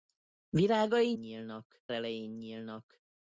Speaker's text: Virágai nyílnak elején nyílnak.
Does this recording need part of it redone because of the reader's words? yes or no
no